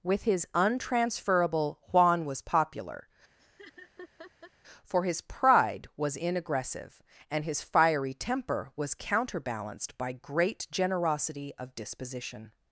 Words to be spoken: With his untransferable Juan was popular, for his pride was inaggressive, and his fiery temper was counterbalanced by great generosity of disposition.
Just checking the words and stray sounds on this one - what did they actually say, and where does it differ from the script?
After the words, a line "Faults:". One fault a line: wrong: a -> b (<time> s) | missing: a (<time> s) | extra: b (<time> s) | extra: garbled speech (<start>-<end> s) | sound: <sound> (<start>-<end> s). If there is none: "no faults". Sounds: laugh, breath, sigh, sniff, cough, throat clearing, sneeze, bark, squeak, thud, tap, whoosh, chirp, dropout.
With his untransferable Juan was popular, for his pride was inaggressive, and his fiery temper was counterbalanced by great generosity of disposition.
Faults:
sound: laugh (3.4-4.5 s)